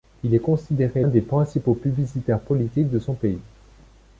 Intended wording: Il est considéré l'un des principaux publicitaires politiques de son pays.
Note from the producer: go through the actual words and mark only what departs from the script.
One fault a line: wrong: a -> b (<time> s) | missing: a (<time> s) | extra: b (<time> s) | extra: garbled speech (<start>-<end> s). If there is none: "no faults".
missing: l'un (1.0 s)